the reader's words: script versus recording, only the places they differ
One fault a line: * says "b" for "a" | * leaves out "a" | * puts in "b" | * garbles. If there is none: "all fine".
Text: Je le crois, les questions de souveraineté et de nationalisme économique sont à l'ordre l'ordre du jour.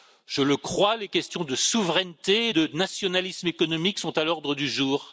* leaves out "l'ordre"